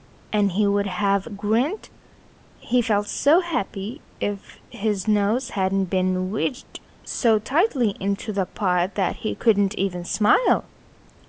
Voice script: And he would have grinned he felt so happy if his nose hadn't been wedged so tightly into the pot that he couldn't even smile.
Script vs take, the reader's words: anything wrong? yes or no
no